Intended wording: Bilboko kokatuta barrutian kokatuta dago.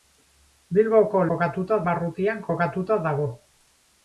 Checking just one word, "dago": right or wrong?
right